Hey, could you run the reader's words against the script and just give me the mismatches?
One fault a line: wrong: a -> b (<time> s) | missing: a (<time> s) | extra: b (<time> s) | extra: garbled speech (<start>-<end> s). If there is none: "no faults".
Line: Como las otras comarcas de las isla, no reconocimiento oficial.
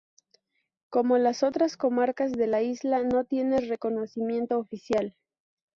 wrong: las -> la (2.5 s)
extra: tiene (3.2 s)